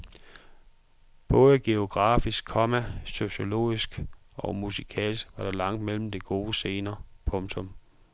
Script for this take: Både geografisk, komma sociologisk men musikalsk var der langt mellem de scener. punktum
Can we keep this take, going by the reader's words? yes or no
no